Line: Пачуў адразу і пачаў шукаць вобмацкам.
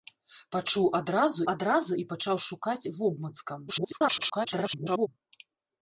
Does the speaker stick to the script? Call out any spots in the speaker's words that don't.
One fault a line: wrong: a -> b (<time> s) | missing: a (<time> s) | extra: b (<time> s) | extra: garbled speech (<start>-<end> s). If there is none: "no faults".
extra: адразу (1.5 s)
extra: garbled speech (3.7-5.1 s)